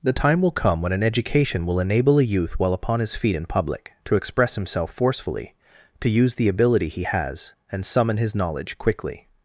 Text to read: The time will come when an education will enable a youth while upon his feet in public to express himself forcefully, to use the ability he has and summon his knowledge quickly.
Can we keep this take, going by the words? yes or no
yes